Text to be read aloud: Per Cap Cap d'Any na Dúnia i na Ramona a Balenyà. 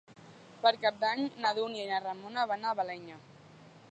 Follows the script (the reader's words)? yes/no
no